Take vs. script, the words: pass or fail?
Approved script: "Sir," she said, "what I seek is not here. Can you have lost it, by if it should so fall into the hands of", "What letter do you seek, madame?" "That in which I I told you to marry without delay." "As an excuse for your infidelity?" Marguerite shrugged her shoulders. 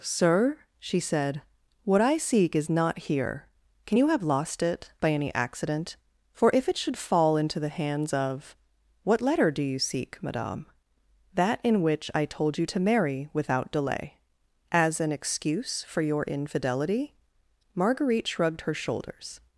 fail